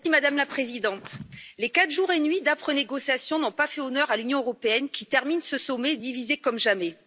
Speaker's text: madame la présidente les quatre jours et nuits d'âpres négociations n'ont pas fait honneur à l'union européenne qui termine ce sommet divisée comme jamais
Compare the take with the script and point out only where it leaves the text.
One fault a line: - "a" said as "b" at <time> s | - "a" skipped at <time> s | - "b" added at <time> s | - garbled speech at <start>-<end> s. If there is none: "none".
none